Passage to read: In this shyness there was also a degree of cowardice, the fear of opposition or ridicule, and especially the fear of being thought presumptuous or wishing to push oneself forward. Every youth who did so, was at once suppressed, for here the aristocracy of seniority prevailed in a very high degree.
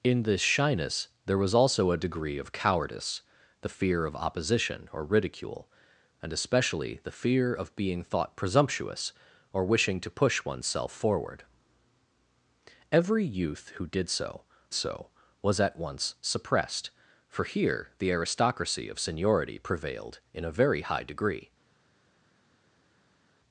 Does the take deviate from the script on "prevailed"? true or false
false